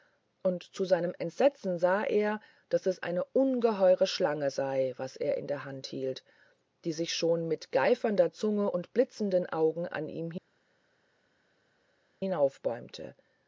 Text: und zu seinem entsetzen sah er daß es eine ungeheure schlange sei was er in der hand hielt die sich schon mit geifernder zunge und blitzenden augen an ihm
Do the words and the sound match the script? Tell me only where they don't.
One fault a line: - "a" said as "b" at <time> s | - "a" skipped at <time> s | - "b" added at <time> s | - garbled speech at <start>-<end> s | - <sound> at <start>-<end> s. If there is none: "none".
none